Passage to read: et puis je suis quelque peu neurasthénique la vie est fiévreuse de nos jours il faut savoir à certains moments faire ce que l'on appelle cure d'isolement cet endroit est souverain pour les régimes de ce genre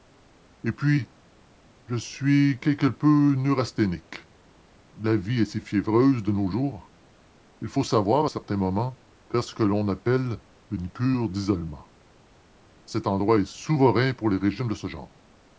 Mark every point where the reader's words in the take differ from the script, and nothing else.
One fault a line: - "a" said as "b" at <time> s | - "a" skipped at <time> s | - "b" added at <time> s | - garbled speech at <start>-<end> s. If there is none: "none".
- "si" added at 5.5 s
- "une" added at 10.7 s